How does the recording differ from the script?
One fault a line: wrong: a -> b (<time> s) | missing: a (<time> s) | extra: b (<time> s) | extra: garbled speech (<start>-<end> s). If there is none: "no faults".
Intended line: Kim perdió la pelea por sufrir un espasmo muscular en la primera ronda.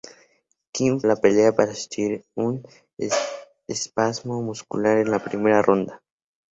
missing: perdió (1.0 s)